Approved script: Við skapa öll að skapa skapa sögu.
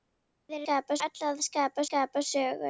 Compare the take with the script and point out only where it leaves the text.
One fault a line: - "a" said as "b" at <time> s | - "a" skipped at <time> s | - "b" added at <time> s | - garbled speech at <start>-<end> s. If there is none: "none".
none